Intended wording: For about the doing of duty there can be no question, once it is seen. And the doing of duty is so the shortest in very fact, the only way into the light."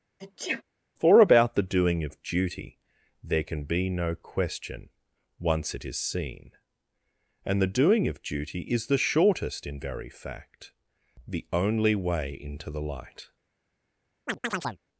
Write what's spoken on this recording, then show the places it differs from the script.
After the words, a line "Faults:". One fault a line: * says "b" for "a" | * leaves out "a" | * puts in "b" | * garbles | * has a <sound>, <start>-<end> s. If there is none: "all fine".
For about the doing of duty there can be no question, once it is seen. And the doing of duty is the shortest in very fact, the only way into the light."
Faults:
* has a sneeze, 0.2-0.6 s
* leaves out "so"
* has a chirp, 14.3-14.8 s